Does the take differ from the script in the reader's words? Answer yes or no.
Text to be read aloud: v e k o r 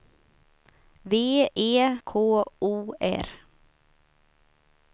no